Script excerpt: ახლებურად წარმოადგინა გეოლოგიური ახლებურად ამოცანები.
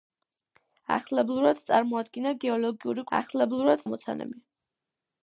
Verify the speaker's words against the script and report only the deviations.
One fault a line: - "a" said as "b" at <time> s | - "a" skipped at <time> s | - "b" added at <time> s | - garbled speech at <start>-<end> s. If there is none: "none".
none